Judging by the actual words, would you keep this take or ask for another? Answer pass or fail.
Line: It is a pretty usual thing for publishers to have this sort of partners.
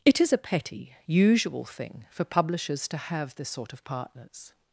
fail